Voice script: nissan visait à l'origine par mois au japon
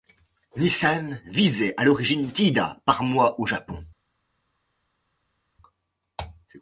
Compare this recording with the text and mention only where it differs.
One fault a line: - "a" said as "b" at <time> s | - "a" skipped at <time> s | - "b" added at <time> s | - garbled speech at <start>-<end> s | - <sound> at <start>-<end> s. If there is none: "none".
- "tiida" added at 2.3 s